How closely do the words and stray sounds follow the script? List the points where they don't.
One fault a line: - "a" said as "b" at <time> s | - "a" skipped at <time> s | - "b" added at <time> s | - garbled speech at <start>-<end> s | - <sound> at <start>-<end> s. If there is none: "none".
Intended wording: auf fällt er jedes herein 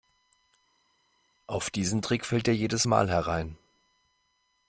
- "diesen trick" added at 1.7 s
- "mal" added at 2.8 s